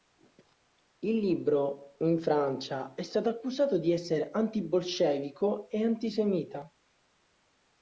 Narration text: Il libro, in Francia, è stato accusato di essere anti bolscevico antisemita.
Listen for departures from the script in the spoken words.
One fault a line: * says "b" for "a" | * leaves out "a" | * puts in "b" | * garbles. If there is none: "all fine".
* puts in "e"